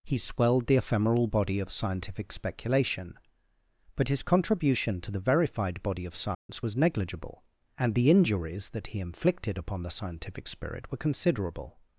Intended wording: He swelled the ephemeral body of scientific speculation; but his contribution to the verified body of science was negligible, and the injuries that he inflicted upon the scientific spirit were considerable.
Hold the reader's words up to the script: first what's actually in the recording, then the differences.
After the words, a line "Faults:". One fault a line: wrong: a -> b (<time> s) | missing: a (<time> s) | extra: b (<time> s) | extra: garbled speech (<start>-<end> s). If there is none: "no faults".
He swelled the ephemeral body of scientific speculation; but his contribution to the verified body of science was negligible, and the injuries that he inflicted upon the scientific spirit were considerable.
Faults:
no faults